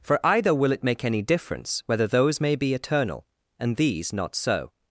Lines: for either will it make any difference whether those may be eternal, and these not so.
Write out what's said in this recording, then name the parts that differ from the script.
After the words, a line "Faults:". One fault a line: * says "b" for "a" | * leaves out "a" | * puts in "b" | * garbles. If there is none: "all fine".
for either will it make any difference whether those may be eternal, and these not so.
Faults:
all fine